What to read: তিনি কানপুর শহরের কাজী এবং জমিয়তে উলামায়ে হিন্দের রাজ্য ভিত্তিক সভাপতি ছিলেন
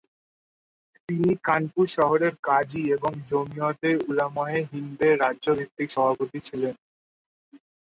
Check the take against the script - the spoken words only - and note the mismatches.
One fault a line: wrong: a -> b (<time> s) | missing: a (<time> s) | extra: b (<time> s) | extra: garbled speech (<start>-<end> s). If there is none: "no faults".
no faults